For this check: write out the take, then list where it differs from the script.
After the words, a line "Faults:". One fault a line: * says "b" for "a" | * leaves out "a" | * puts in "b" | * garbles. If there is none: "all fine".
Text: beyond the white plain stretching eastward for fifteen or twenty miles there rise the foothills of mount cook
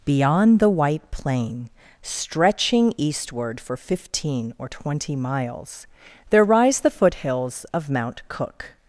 beyond the white plain stretching eastward for fifteen or twenty miles there rise the foothills of mount cook
Faults:
all fine